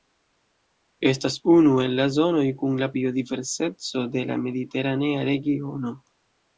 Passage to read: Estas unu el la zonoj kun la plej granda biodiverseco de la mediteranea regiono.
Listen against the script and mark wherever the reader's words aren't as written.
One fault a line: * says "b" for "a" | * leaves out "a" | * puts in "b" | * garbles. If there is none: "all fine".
* leaves out "plej granda"